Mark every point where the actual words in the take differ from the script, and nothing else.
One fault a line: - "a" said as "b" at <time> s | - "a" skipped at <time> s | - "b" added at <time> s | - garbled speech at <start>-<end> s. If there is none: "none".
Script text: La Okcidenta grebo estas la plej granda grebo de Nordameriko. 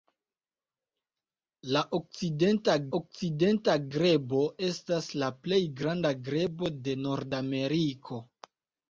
- "Okcidenta" added at 3.0 s